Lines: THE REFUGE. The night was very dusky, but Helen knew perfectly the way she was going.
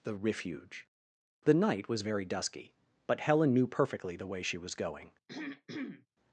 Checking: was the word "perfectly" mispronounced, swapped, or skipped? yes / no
no